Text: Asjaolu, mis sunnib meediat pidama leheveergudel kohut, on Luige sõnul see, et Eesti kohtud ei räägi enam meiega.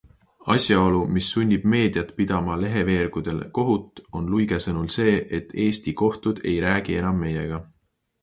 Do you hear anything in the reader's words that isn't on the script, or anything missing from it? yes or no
no